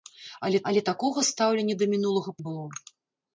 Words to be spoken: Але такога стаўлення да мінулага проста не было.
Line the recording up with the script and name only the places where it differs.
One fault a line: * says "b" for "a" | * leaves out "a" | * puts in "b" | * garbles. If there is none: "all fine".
* puts in "але"
* leaves out "проста"